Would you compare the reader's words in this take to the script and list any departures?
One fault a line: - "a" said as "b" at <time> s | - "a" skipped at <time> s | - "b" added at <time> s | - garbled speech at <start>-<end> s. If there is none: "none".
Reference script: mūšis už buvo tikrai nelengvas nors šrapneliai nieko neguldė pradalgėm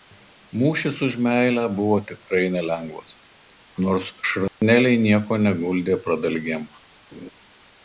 - "meilę" added at 1.3 s